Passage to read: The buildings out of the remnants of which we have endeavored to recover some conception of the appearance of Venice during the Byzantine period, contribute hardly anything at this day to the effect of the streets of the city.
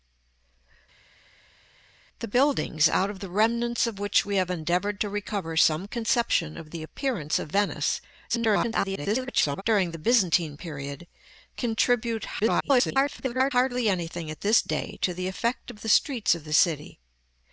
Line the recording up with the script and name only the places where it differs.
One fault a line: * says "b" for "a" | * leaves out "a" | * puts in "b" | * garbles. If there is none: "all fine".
* garbles
* garbles